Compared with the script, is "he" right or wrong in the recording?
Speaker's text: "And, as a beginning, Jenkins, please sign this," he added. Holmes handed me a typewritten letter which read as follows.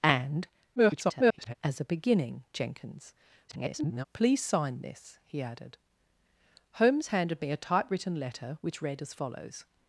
right